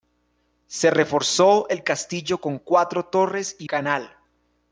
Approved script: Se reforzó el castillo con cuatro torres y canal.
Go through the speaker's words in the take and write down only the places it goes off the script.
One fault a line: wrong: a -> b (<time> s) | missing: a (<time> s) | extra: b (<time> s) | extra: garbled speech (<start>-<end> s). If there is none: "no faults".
no faults